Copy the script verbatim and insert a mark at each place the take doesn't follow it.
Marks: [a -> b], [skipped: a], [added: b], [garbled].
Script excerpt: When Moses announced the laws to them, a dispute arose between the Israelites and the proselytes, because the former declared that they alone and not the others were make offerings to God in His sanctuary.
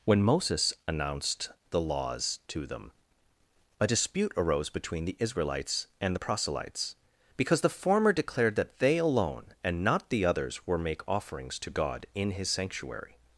When Moses announced the laws to them, a dispute arose between the Israelites and the proselytes, because the former declared that they alone and not the others were make offerings to God in His sanctuary.